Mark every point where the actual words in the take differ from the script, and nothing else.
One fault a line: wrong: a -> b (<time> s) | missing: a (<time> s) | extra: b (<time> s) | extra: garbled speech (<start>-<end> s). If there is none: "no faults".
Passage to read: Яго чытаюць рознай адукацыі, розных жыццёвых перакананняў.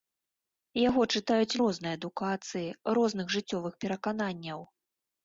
no faults